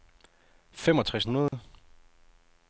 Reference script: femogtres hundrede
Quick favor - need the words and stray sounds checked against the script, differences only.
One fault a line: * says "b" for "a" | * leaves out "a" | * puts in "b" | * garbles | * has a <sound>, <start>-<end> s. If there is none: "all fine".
* has a dropout, 1.5-1.5 s